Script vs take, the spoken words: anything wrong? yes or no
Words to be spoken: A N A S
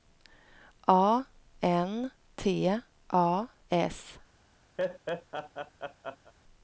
yes